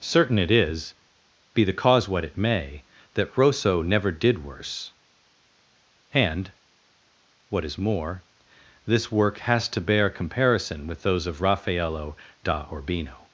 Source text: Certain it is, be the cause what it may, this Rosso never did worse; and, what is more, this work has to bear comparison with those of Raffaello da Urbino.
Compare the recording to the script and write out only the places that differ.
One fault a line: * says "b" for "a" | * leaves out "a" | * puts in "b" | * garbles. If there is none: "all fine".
* says "that" for "this"